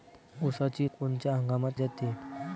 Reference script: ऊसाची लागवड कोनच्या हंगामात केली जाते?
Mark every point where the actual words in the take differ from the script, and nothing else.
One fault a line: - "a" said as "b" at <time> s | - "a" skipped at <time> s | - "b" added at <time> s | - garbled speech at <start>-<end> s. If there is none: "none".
- "लागवड" skipped at 0.9 s
- "केली" skipped at 1.7 s